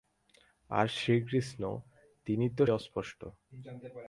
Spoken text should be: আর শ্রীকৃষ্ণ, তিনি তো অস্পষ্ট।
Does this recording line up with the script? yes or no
yes